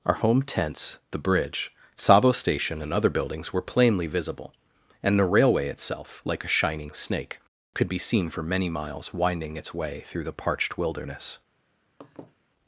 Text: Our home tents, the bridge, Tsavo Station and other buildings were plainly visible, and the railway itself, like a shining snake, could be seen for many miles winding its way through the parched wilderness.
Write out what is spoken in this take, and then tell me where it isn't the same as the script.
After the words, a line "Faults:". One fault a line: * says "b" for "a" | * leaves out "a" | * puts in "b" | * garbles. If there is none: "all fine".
Our home tents, the bridge, Tsavo Station and other buildings were plainly visible, and the railway itself, like a shining snake, could be seen for many miles winding its way through the parched wilderness.
Faults:
all fine